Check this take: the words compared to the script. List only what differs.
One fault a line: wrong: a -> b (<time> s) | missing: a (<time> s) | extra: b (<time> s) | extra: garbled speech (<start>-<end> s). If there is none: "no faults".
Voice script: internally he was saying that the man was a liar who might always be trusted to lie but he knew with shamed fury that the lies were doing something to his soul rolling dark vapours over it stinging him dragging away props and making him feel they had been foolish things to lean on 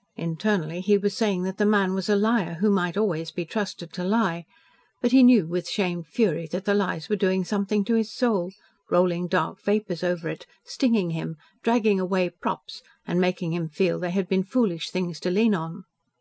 no faults